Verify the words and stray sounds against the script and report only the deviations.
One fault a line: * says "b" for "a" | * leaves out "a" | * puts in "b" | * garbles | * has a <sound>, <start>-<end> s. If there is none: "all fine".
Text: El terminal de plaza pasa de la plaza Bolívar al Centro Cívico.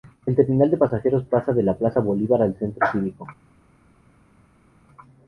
* says "pasajeros" for "plaza"